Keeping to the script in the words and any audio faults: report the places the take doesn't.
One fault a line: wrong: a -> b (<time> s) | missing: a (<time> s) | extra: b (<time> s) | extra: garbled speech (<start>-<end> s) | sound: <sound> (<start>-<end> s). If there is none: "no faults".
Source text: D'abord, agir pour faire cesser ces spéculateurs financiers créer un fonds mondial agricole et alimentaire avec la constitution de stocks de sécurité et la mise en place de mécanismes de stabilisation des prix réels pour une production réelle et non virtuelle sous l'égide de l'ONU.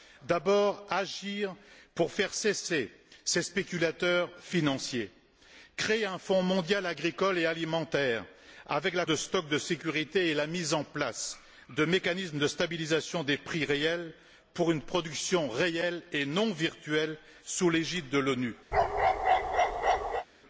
missing: constitution (9.1 s)
sound: bark (18.7-20.3 s)